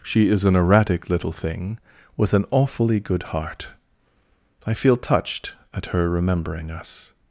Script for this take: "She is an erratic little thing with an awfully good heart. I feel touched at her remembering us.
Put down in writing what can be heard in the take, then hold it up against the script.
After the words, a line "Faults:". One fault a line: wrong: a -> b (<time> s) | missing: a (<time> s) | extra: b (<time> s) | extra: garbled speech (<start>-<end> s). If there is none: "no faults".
"She is an erratic little thing with an awfully good heart. I feel touched at her remembering us.
Faults:
no faults